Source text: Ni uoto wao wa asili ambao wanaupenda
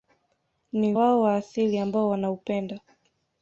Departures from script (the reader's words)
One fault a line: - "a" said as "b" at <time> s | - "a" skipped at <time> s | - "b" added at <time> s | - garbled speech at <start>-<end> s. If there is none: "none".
- "uoto" skipped at 0.9 s